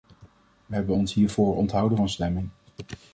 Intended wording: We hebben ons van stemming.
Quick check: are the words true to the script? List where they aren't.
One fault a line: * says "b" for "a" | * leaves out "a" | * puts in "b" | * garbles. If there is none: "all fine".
* puts in "hiervoor onthouden"